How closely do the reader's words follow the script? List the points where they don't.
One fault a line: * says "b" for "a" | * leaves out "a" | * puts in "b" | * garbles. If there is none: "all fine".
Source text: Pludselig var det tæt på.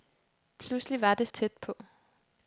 all fine